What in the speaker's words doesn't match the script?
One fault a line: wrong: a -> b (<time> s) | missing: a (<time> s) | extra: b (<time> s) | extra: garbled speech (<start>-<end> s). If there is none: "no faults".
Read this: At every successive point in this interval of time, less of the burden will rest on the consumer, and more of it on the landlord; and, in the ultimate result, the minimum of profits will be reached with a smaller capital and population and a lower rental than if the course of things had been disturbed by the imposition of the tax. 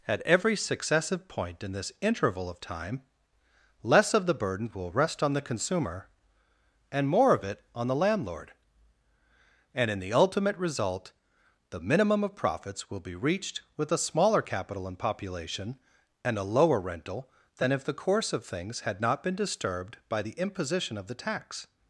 extra: not (19.0 s)